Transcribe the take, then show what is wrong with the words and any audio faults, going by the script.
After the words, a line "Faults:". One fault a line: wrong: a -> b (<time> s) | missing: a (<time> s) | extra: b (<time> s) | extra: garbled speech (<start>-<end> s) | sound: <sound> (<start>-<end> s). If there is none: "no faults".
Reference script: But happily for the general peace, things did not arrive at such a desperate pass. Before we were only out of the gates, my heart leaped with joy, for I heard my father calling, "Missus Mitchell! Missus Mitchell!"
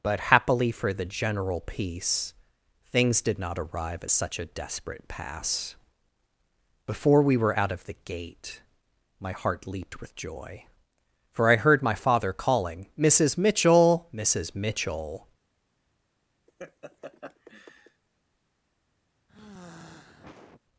But happily for the general peace, things did not arrive at such a desperate pass. Before we were out of the gate, my heart leaped with joy, for I heard my father calling, "Missus Mitchell! Missus Mitchell!"
Faults:
missing: only (7.6 s)
wrong: gates -> gate (8.0 s)
sound: laugh (16.5-18.0 s)
sound: sigh (19.3-20.6 s)